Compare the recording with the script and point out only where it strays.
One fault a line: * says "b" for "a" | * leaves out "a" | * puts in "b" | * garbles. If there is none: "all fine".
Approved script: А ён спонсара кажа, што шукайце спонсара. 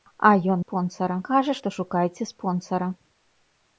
all fine